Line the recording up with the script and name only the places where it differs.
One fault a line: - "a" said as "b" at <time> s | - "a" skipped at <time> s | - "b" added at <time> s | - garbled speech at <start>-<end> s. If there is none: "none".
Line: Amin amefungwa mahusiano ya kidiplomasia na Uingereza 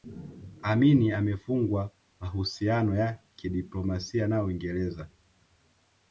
none